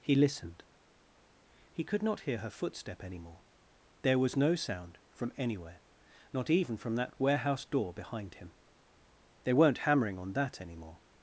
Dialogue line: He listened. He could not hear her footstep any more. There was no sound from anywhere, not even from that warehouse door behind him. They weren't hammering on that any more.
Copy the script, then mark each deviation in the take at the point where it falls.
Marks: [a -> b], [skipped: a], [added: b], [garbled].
He listened. He could not hear her footstep any more. There was no sound from anywhere, not even from that warehouse door behind him. They weren't hammering on that any more.